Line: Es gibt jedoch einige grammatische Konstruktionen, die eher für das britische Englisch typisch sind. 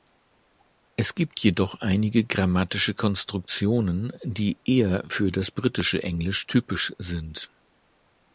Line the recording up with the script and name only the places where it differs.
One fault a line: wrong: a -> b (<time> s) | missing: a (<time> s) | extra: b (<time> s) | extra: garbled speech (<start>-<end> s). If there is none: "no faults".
no faults